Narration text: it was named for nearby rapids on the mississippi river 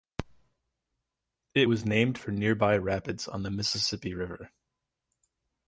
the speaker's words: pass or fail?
pass